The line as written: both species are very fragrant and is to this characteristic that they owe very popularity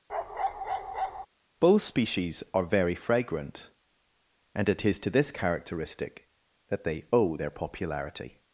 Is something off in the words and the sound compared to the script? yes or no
yes